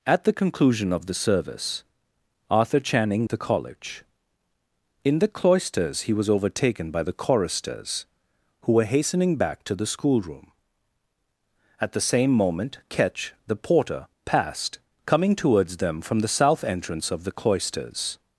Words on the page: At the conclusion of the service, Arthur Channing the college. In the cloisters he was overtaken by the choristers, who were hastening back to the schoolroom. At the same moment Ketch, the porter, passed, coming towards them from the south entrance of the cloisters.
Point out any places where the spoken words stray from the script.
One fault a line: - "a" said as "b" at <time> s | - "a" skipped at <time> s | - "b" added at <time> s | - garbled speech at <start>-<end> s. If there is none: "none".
none